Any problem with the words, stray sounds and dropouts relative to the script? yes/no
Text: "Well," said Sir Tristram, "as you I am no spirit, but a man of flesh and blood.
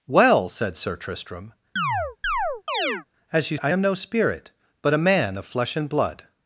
yes